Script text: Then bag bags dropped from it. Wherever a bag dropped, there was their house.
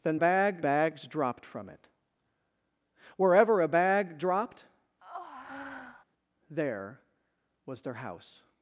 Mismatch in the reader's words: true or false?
false